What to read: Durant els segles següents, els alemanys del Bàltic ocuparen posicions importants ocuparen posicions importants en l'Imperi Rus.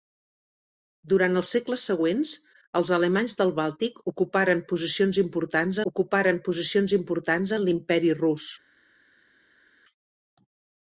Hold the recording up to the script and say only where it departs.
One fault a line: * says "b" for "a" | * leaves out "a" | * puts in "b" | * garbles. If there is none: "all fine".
all fine